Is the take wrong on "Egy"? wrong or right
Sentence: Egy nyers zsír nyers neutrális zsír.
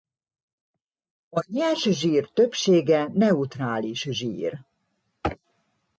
wrong